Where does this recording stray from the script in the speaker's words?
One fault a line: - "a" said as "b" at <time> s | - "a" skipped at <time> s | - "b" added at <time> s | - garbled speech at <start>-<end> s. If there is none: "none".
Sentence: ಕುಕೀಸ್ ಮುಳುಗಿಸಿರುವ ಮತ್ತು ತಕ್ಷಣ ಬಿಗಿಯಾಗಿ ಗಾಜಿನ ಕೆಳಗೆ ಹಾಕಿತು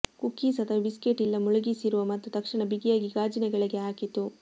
- "ಅಥವಾ ಬಿಸ್ಕೆಟ್ ಇಲ್ಲ" added at 0.6 s